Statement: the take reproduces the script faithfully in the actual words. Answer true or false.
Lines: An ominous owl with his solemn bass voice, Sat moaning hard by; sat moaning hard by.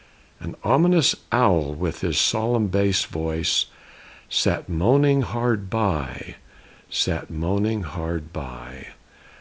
true